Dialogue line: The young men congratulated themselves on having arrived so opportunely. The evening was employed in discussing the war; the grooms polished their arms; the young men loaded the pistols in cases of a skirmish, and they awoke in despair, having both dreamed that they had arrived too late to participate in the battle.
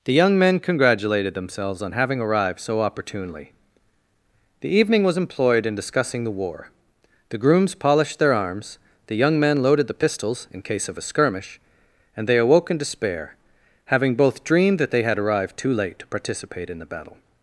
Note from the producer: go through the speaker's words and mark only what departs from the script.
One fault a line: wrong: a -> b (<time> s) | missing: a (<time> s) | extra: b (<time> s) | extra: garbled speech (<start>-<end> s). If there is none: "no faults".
wrong: cases -> case (10.6 s)